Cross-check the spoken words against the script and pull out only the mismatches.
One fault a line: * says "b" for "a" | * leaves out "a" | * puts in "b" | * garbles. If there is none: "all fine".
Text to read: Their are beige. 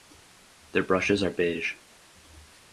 * puts in "brushes"